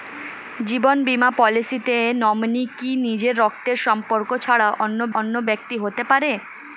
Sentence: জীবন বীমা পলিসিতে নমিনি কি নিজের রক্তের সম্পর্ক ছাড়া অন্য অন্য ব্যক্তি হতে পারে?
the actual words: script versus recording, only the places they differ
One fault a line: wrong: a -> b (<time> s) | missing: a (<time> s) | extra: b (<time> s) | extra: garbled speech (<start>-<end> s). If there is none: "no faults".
no faults